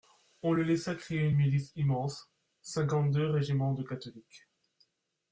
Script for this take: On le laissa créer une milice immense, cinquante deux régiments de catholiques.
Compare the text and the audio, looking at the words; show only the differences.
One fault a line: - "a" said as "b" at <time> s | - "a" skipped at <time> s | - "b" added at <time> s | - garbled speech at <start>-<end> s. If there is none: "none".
none